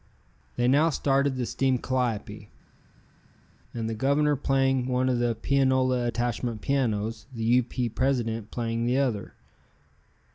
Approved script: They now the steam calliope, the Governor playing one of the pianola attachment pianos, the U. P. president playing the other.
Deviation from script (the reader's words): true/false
true